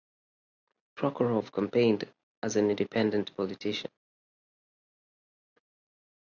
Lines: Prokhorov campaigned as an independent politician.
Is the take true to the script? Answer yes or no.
yes